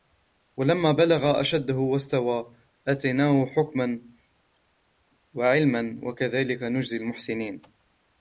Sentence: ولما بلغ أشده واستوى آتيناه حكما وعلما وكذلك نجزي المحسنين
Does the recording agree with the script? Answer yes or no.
yes